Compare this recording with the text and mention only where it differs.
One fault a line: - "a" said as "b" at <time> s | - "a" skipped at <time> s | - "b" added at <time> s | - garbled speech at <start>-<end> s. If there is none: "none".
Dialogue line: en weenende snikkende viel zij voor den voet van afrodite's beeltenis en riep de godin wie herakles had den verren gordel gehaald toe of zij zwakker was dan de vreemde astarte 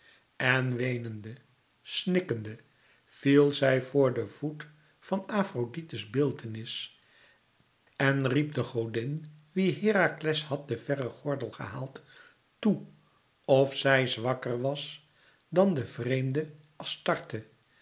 none